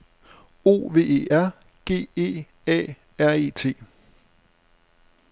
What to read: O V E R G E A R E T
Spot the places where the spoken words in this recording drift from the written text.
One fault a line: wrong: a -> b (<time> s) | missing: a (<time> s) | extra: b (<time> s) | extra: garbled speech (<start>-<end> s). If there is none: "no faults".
no faults